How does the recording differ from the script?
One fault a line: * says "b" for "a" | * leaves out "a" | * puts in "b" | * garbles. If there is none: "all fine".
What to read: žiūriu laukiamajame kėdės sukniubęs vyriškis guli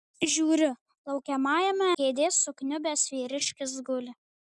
all fine